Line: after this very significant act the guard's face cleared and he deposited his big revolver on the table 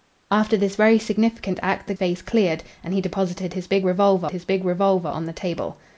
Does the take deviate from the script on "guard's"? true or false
true